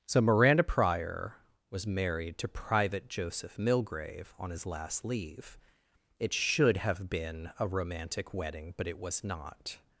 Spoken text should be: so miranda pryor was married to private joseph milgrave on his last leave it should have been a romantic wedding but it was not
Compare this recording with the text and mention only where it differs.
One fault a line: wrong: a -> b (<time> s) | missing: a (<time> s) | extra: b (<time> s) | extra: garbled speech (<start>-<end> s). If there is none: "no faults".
no faults